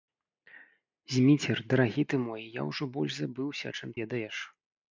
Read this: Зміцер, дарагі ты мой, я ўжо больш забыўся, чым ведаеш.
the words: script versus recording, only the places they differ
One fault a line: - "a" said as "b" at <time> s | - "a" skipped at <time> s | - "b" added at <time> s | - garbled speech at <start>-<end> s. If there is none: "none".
none